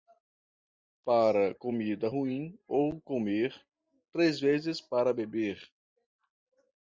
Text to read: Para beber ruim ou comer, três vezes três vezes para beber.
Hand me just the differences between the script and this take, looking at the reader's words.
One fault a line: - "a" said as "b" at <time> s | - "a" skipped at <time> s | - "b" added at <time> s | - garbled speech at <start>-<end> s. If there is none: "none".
- "beber" said as "comida" at 1.5 s
- "três vezes" skipped at 4.8 s